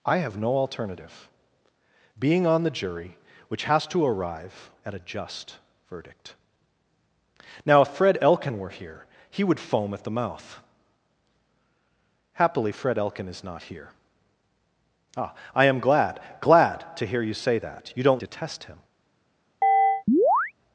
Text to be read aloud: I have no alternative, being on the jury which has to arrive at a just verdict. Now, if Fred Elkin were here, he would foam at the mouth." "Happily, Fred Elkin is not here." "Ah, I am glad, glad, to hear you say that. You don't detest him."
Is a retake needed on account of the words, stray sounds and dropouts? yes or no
yes